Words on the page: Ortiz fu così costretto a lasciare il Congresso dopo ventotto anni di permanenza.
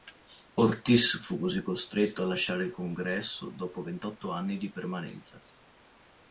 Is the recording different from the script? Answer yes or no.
no